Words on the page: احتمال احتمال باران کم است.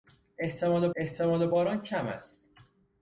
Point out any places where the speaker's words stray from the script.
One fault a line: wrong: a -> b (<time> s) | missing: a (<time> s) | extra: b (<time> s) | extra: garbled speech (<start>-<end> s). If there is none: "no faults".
no faults